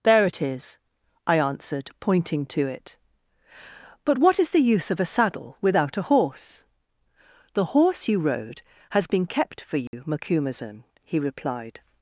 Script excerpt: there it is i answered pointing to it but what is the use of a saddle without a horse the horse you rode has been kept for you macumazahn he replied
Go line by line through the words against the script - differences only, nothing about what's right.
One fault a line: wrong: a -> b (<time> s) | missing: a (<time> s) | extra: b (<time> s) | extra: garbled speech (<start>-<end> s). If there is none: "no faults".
no faults